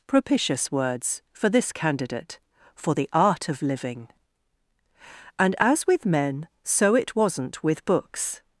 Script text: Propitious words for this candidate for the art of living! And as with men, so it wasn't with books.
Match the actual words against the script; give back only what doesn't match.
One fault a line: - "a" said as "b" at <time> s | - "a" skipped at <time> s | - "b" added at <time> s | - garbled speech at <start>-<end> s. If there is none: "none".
none